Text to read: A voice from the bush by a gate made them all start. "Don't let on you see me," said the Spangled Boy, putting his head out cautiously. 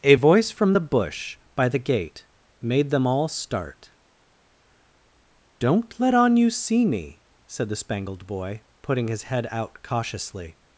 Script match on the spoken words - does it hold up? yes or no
no